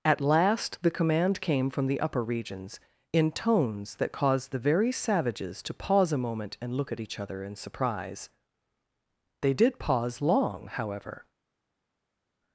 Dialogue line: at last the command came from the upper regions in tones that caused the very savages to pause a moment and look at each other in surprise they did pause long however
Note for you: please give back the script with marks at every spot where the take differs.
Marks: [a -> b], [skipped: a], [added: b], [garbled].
at last the command came from the upper regions in tones that caused the very savages to pause a moment and look at each other in surprise they did pause long however